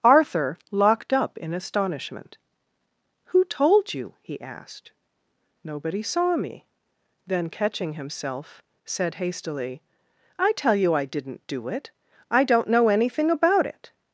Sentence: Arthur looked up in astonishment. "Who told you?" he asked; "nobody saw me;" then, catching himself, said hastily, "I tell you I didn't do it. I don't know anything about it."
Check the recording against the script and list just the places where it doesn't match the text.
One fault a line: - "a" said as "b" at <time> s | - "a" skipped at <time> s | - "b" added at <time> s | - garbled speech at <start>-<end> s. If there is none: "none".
- "looked" said as "locked" at 0.7 s